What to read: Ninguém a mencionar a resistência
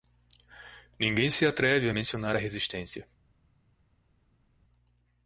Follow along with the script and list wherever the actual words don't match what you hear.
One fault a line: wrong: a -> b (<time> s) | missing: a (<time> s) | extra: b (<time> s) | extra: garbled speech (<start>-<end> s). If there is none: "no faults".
extra: se atreve (1.3 s)